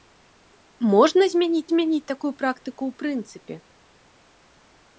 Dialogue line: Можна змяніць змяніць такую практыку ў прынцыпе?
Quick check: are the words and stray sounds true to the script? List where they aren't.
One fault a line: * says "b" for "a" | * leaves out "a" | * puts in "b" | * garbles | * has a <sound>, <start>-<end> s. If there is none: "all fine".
all fine